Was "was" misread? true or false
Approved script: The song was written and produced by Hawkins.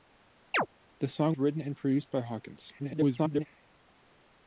true